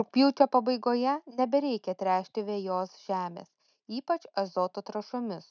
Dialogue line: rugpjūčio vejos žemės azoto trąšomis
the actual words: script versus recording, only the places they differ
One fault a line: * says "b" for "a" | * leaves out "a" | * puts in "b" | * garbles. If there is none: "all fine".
* puts in "pabaigoje nebereikia tręšti"
* puts in "ypač"